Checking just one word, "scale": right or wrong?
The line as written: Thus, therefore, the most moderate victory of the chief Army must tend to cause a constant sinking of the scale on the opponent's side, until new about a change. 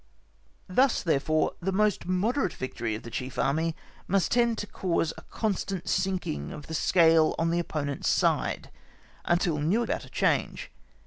right